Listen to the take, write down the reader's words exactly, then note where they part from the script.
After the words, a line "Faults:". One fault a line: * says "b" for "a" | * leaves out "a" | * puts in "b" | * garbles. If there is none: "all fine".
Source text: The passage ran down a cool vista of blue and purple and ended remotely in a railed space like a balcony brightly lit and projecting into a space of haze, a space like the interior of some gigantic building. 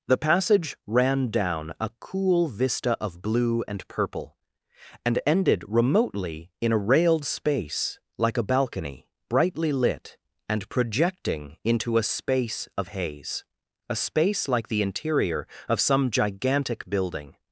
The passage ran down a cool vista of blue and purple and ended remotely in a railed space like a balcony brightly lit and projecting into a space of haze, a space like the interior of some gigantic building.
Faults:
all fine